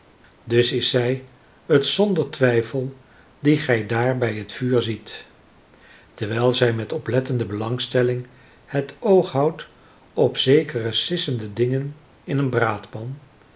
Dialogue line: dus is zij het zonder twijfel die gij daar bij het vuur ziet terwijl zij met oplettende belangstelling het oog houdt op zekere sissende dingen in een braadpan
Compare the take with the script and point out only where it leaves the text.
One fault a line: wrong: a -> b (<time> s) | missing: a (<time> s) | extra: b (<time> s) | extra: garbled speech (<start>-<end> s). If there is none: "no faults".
no faults